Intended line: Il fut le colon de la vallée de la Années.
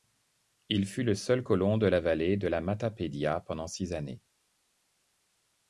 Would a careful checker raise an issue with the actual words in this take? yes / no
yes